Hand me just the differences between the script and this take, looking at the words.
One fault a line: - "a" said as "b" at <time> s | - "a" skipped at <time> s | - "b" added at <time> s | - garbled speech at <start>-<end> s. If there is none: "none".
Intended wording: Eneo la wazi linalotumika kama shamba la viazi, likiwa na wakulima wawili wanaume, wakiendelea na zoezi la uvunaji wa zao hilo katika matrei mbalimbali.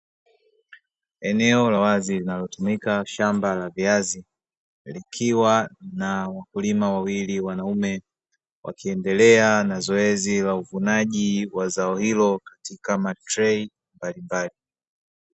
- "kama" skipped at 3.0 s